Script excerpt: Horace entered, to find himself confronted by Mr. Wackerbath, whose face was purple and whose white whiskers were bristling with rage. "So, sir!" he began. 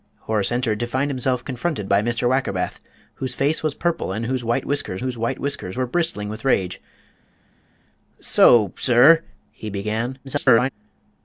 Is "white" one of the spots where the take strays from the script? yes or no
no